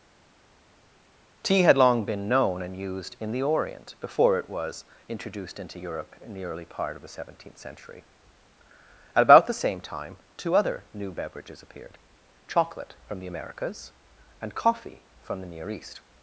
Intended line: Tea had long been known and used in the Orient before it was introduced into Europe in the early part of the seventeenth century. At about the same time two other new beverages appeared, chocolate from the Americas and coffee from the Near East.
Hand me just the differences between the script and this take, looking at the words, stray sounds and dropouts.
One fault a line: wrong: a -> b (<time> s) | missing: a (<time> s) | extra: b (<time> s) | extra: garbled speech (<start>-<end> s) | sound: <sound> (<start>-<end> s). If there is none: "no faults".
no faults